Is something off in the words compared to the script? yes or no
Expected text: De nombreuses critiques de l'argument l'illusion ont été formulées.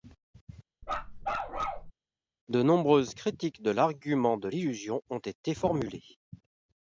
yes